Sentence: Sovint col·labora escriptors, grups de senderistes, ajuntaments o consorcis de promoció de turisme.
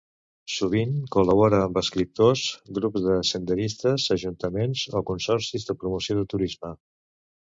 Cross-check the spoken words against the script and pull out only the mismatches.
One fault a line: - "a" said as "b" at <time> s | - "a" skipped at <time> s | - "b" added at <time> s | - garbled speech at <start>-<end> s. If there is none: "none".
- "amb" added at 1.6 s